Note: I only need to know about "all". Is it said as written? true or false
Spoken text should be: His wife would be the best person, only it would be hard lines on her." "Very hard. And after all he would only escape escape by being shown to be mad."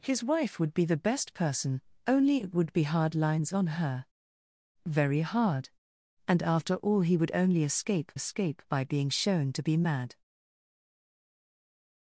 true